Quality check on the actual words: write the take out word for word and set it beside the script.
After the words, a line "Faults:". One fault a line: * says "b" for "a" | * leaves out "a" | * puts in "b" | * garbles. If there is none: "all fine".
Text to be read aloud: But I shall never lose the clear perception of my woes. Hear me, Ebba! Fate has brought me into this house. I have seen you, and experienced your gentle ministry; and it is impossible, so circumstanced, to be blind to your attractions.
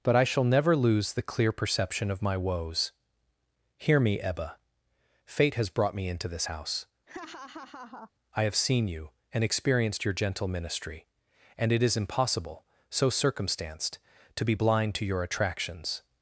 But I shall never lose the clear perception of my woes. Hear me, Ebba! Fate has brought me into this house. I have seen you, and experienced your gentle ministry; and it is impossible, so circumstanced, to be blind to your attractions.
Faults:
all fine